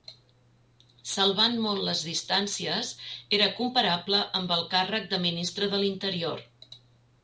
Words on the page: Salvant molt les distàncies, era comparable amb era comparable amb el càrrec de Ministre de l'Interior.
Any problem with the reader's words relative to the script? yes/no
yes